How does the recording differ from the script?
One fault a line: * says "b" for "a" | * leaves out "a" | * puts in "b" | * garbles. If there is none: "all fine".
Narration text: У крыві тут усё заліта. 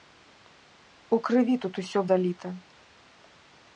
all fine